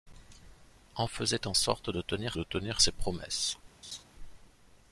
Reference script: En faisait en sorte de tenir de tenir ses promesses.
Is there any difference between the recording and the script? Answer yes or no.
no